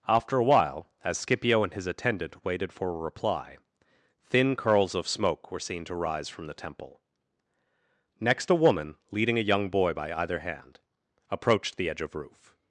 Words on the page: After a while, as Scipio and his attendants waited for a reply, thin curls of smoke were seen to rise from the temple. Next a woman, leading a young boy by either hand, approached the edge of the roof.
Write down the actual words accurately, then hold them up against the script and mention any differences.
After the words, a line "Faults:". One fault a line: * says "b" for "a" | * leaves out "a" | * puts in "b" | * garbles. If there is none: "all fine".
After a while, as Scipio and his attendant waited for a reply, thin curls of smoke were seen to rise from the temple. Next a woman, leading a young boy by either hand, approached the edge of roof.
Faults:
* says "attendant" for "attendants"
* leaves out "the"